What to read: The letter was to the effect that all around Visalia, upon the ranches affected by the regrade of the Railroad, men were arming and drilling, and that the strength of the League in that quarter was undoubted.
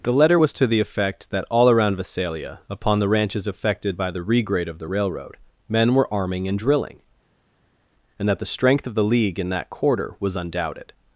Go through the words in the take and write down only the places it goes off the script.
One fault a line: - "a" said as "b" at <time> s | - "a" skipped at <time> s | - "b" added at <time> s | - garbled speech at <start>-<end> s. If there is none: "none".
none